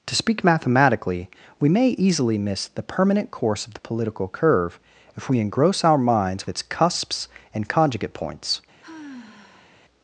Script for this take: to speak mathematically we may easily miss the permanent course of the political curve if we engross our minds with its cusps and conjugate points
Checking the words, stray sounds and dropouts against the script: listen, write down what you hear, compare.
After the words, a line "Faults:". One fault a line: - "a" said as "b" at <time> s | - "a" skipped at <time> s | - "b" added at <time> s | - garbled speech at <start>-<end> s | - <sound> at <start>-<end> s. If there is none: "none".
to speak mathematically we may easily miss the permanent course of the political curve if we engross our minds its cusps and conjugate points
Faults:
- "with" skipped at 6.5 s
- sigh at 8.8-9.8 s